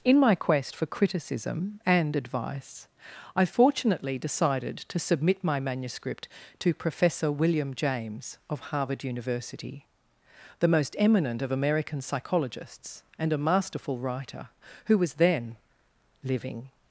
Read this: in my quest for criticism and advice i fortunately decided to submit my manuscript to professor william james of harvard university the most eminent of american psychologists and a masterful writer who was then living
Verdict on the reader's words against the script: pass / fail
pass